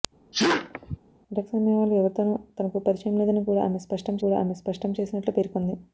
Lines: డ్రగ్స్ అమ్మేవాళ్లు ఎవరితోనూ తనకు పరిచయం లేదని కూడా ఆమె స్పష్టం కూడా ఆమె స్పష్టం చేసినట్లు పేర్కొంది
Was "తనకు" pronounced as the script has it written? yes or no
yes